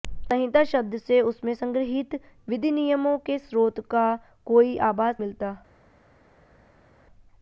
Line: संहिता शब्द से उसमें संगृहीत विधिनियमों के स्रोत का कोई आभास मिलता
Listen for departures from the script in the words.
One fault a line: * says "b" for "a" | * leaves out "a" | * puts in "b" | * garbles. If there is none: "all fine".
all fine